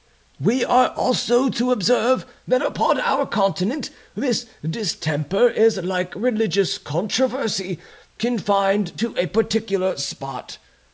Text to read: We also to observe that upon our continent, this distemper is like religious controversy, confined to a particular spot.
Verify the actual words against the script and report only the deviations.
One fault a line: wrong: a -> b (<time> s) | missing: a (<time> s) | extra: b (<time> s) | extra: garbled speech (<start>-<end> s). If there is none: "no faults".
extra: are (0.7 s)